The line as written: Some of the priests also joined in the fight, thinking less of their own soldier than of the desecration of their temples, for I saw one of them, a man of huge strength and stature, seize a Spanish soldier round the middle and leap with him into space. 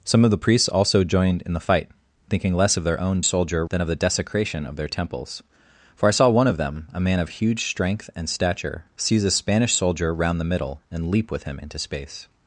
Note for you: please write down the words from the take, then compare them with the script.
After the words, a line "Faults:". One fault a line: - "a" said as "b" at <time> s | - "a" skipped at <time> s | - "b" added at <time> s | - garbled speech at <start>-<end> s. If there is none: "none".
Some of the priests also joined in the fight, thinking less of their own soldier than of the desecration of their temples, for I saw one of them, a man of huge strength and stature, seize a Spanish soldier round the middle and leap with him into space.
Faults:
none